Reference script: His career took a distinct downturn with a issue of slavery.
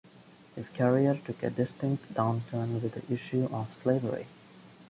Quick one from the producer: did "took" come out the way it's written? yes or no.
yes